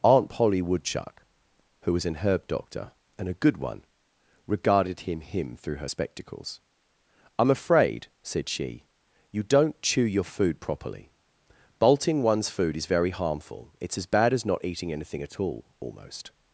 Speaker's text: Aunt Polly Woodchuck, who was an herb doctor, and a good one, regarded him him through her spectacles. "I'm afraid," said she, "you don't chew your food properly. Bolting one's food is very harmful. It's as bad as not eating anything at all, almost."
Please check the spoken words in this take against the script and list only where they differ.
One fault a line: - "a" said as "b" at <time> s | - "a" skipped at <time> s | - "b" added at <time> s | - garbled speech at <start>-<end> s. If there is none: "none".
none